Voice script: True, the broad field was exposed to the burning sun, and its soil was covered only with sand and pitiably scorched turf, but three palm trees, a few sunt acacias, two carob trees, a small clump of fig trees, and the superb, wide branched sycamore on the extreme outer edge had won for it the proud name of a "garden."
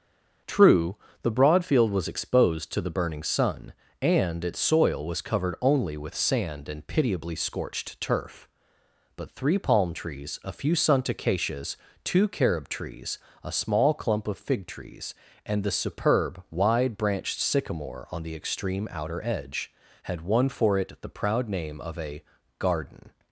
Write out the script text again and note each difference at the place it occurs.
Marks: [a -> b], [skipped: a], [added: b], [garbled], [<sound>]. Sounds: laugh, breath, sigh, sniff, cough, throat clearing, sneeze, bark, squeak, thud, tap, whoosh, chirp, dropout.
True, the broad field was exposed to the burning sun, and its soil was covered only with sand and pitiably scorched turf, but three palm trees, a few sunt acacias, two carob trees, a small clump of fig trees, and the superb, wide branched sycamore on the extreme outer edge had won for it the proud name of a "garden."